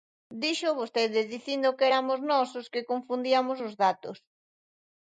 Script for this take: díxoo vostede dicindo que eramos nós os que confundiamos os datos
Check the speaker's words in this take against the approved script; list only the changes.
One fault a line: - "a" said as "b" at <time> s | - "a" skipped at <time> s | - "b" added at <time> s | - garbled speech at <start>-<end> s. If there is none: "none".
none